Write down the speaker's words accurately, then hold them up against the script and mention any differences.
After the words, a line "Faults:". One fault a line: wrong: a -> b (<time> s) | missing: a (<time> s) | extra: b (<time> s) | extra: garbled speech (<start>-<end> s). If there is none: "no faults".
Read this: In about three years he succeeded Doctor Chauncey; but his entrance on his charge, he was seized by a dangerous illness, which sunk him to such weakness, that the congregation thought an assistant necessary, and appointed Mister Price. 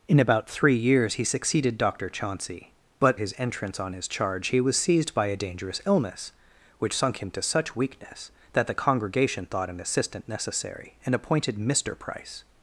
In about three years he succeeded Doctor Chauncey; but his entrance on his charge, he was seized by a dangerous illness, which sunk him to such weakness, that the congregation thought an assistant necessary, and appointed Mister Price.
Faults:
no faults